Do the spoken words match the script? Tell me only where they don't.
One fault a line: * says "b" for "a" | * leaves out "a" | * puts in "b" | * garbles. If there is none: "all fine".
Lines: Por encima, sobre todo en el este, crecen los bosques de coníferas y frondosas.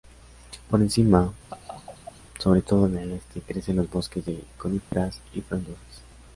all fine